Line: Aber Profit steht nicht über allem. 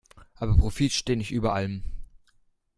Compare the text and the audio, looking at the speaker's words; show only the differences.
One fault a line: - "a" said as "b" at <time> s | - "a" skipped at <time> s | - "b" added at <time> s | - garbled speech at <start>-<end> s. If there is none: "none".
none